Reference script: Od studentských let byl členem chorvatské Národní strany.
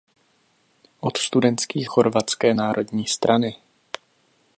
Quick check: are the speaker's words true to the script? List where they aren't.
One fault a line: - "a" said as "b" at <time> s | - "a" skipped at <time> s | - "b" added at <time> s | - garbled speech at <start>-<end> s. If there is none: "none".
- "let byl členem" skipped at 1.9 s